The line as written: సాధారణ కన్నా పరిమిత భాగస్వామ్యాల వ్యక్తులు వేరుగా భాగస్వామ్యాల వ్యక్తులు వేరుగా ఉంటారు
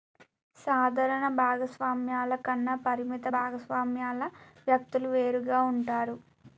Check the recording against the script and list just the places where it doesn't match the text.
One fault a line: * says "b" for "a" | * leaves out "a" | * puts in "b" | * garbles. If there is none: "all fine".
* puts in "భాగస్వామ్యాల"
* leaves out "భాగస్వామ్యాల వ్యక్తులు వేరుగా"